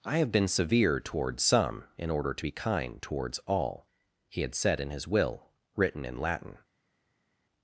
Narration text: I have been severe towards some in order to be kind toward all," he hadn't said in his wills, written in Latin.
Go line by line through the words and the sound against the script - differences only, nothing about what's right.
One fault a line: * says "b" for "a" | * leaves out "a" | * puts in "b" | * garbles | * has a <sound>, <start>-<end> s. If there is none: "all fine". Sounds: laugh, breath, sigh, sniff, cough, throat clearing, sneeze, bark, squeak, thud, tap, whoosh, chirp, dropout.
* says "towards" for "toward"
* says "had" for "hadn't"
* says "will" for "wills"